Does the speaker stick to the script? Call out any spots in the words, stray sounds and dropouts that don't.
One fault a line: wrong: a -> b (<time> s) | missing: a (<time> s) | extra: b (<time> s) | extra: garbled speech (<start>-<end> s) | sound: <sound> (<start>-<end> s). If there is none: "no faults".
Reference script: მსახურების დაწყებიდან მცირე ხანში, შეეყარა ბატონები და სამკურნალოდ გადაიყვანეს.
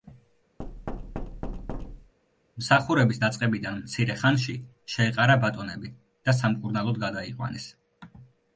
sound: thud (0.6-2.1 s)